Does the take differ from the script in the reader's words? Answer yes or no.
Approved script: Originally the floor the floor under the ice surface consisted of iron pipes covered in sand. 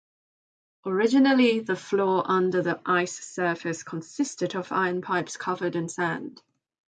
yes